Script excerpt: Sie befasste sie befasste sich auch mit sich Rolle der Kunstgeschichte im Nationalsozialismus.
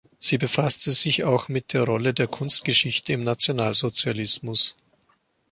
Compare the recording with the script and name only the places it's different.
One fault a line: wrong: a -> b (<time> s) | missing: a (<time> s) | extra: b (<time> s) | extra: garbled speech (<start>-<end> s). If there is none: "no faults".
missing: sie befasste (0.9 s)
wrong: sich -> der (1.7 s)